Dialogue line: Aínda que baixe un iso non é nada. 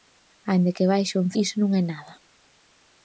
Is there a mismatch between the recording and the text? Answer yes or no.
no